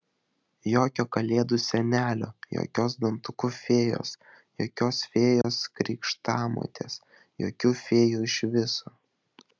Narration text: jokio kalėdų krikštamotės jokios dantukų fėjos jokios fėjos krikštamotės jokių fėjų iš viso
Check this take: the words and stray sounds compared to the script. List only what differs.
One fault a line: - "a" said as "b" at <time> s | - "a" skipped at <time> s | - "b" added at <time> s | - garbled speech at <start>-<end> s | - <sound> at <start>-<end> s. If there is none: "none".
- "krikštamotės" said as "senelio" at 1.6 s
- dropout at 5.4-5.4 s